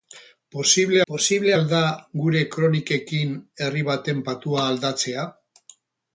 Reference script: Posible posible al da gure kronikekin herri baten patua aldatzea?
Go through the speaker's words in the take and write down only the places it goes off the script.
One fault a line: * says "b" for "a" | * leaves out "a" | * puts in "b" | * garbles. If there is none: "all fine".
all fine